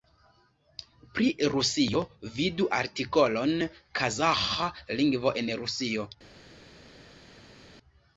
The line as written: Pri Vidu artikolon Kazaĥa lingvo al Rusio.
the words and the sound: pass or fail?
fail